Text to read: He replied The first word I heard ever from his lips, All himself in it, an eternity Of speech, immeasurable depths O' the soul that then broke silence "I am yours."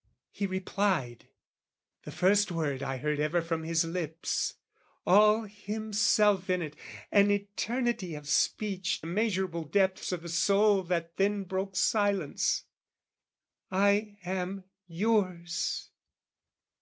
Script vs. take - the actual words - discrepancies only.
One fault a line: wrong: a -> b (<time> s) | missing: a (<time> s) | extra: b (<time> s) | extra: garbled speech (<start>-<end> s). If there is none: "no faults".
no faults